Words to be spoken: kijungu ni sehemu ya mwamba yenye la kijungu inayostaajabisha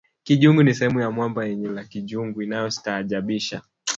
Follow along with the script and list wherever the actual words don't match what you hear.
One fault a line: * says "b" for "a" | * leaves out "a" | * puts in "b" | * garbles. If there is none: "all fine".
all fine